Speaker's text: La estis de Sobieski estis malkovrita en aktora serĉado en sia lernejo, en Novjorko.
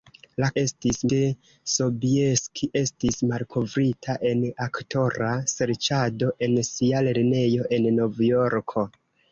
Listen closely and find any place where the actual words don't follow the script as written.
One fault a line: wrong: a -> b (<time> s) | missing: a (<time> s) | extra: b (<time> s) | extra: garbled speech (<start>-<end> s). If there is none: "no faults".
no faults